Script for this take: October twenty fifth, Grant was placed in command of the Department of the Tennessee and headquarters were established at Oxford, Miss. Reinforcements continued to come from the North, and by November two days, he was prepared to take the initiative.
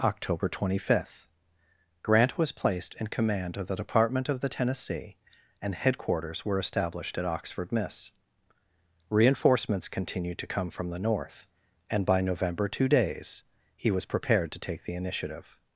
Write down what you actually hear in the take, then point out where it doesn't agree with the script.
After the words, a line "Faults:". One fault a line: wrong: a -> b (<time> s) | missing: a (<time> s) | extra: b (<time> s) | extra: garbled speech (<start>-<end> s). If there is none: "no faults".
October twenty fifth, Grant was placed in command of the Department of the Tennessee and headquarters were established at Oxford, Miss. Reinforcements continued to come from the North, and by November two days, he was prepared to take the initiative.
Faults:
no faults